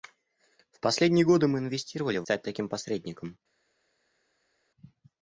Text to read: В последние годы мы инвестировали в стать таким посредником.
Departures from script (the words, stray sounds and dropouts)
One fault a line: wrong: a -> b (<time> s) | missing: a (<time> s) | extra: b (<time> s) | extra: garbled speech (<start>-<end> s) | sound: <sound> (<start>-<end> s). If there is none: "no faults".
no faults